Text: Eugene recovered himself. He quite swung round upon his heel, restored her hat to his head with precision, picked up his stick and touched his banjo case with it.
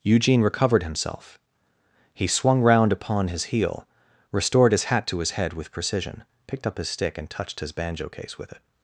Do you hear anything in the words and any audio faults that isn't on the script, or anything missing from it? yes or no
yes